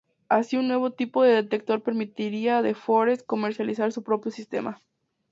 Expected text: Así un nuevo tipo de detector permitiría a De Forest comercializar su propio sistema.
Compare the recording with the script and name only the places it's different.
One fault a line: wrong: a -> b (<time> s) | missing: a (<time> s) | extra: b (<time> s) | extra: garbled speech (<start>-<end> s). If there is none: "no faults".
no faults